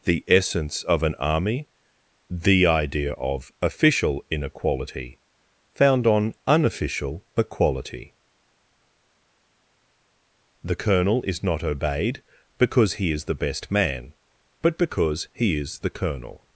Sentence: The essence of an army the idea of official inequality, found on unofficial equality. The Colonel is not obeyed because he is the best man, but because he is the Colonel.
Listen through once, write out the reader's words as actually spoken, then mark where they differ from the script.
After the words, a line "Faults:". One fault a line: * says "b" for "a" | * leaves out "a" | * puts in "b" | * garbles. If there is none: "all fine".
The essence of an army the idea of official inequality, found on unofficial equality. The Colonel is not obeyed because he is the best man, but because he is the Colonel.
Faults:
all fine